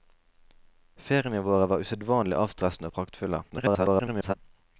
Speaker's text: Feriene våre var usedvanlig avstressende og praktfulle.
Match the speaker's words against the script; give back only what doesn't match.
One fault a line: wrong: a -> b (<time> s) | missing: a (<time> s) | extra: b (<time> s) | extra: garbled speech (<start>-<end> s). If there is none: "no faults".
extra: garbled speech (3.5-4.3 s)